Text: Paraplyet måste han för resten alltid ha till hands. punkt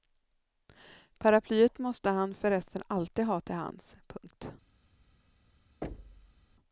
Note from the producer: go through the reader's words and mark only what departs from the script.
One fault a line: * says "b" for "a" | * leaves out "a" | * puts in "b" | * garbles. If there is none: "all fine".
all fine